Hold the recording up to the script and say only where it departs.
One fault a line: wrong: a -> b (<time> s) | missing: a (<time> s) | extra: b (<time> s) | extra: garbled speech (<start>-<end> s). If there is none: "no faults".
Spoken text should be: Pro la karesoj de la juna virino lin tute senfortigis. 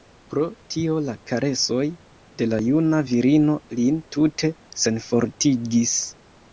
extra: tio (0.8 s)